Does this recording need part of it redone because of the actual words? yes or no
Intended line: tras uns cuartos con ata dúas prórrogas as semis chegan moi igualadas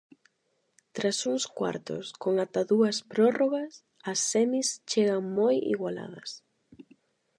no